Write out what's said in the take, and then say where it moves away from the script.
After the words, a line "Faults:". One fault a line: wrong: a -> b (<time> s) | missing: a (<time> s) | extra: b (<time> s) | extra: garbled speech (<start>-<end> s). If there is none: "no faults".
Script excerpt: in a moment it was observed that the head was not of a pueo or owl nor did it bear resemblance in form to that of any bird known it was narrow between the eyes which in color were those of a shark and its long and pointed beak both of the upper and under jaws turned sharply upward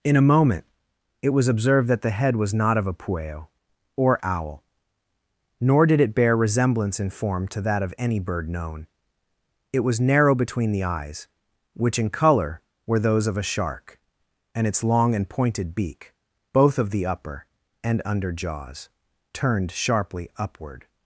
in a moment it was observed that the head was not of a pueo or owl nor did it bear resemblance in form to that of any bird known it was narrow between the eyes which in color were those of a shark and its long and pointed beak both of the upper and under jaws turned sharply upward
Faults:
no faults